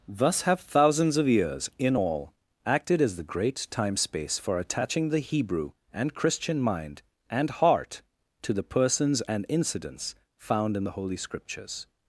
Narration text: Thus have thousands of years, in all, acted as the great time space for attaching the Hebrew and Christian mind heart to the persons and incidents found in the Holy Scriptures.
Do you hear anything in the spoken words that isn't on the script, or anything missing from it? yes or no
yes